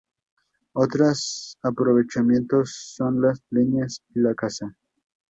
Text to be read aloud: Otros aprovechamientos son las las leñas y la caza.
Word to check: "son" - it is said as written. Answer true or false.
true